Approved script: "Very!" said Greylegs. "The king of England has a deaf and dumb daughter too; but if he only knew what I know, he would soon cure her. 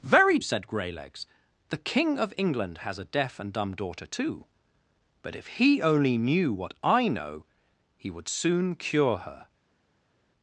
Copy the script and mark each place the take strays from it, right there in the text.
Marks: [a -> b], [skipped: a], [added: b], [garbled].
"Very!" said Greylegs. "The king of England has a deaf and dumb daughter too; but if he only knew what I know, he would soon cure her.